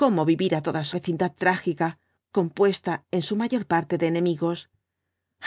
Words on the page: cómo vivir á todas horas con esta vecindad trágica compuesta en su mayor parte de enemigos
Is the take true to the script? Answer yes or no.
no